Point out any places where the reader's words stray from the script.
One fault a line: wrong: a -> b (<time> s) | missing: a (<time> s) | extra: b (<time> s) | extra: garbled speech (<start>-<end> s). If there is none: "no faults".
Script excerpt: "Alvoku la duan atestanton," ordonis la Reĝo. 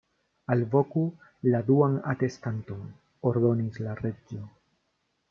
no faults